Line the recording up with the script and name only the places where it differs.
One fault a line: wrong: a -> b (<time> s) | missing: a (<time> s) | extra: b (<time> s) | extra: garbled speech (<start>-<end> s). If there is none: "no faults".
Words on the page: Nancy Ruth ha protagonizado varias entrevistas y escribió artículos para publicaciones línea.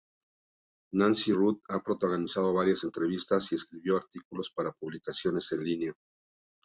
extra: en (5.5 s)